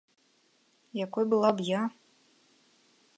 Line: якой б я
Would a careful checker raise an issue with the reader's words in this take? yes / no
yes